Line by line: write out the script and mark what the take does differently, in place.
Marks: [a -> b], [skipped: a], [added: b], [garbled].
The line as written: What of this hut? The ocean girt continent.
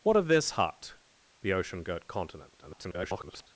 What of this hut? The ocean girt continent. [garbled]